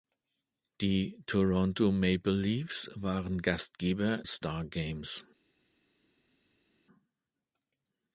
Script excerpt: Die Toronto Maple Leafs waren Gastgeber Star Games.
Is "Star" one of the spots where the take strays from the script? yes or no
no